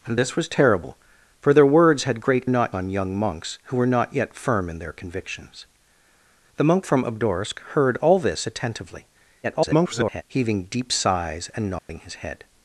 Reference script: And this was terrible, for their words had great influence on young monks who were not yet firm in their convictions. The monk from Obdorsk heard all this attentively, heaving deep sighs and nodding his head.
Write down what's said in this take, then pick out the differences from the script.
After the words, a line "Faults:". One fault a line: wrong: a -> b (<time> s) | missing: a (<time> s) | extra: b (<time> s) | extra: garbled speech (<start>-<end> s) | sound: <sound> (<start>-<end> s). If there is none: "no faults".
And this was terrible, for their words had great not on young monks who were not yet firm in their convictions. The monk from Obdorsk heard all this attentively, [garbled] heaving deep sighs and nodding his head.
Faults:
wrong: influence -> not (2.5 s)
extra: garbled speech (9.4-10.2 s)
sound: dropout (11.8-11.9 s)